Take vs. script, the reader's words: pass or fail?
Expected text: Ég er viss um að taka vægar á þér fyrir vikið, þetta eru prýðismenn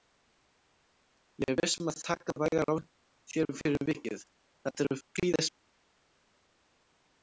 pass